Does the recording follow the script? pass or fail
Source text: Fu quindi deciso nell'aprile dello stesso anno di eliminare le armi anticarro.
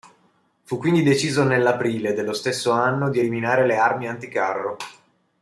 pass